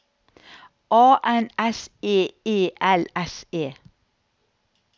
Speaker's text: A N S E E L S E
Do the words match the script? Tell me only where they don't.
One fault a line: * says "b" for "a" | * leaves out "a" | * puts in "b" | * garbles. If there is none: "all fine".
all fine